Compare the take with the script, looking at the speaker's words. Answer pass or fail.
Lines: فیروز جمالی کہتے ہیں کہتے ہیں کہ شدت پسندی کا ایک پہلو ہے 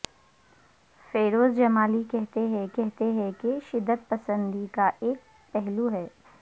pass